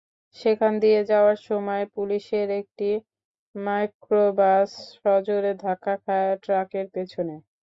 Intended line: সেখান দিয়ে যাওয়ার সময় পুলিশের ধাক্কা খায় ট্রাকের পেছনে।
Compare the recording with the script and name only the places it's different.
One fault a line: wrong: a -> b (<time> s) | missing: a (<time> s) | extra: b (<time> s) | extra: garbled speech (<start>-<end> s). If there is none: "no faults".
extra: একটি মাইক্রোবাস সজোরে (2.6 s)